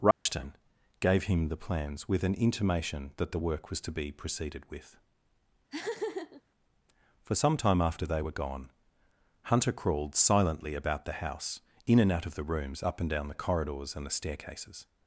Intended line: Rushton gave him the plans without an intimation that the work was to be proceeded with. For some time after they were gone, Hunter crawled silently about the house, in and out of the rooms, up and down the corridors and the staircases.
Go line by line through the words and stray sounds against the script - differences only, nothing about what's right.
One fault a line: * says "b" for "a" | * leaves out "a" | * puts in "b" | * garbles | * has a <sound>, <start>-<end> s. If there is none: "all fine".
* has a dropout, 0.1-0.3 s
* says "with" for "without"
* has a laugh, 5.7-6.4 s